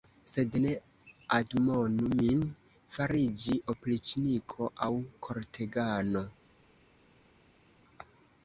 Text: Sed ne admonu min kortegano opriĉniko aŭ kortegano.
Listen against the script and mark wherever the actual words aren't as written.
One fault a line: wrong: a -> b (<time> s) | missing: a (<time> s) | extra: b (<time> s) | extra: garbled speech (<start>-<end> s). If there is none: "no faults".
wrong: kortegano -> fariĝi (3.0 s)